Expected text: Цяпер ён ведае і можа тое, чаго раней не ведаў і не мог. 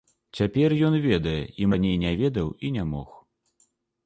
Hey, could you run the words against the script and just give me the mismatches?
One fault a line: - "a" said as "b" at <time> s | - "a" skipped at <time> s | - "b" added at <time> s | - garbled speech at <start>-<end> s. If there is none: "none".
- "можа тое чаго" skipped at 1.7 s